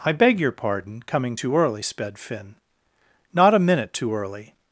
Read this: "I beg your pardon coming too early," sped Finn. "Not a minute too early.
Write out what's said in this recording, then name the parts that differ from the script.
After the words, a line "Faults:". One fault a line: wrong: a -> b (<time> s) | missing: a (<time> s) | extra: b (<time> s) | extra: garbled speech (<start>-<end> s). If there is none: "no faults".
"I beg your pardon coming too early," sped Finn. "Not a minute too early.
Faults:
no faults